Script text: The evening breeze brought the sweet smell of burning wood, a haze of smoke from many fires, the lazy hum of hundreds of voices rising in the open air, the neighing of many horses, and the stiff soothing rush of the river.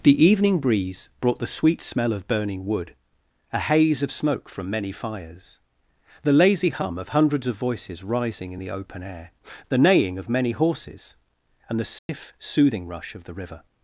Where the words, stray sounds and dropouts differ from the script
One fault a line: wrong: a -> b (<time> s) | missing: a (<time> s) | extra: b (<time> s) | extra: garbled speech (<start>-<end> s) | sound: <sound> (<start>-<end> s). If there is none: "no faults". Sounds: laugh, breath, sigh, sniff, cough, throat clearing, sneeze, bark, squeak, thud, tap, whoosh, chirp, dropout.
sound: dropout (12.0-12.1 s)